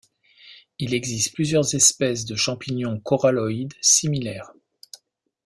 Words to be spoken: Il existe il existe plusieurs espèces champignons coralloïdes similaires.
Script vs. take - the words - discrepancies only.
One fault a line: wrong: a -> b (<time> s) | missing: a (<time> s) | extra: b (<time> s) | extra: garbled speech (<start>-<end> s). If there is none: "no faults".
missing: il existe (1.4 s)
extra: de (2.2 s)